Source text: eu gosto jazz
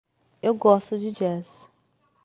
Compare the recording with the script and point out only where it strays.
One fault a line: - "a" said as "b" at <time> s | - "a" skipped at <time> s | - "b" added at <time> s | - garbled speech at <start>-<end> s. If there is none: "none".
- "de" added at 1.0 s